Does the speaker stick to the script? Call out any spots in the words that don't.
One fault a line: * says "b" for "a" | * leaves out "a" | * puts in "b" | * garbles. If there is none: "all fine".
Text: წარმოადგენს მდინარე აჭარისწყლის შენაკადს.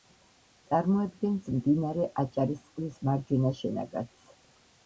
* puts in "მარჯვენა"